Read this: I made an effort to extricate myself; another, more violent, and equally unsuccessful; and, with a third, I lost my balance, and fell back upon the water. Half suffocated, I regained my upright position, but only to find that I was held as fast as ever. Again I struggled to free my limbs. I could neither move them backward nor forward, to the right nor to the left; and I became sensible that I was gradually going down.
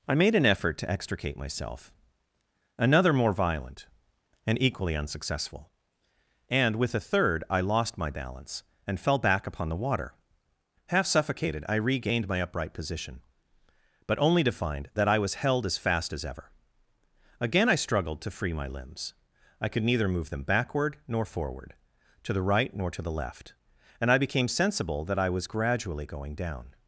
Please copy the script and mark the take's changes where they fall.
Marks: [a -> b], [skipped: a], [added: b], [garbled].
I made an effort to extricate myself; another, more violent, and equally unsuccessful; and, with a third, I lost my balance, and fell back upon the water. Half suffocated, I regained my upright position, but only to find that I was held as fast as ever. Again I struggled to free my limbs. I could neither move them backward nor forward, to the right nor to the left; and I became sensible that I was gradually going down.